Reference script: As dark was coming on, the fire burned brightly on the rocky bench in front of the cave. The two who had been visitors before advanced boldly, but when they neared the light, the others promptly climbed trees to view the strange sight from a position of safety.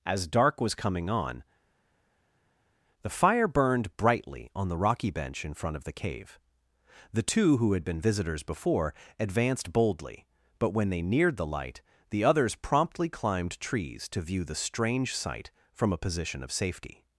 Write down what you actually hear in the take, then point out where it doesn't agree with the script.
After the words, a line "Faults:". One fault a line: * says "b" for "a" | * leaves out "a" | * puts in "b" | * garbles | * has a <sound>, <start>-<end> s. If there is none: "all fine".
As dark was coming on, the fire burned brightly on the rocky bench in front of the cave. The two who had been visitors before advanced boldly, but when they neared the light, the others promptly climbed trees to view the strange sight from a position of safety.
Faults:
all fine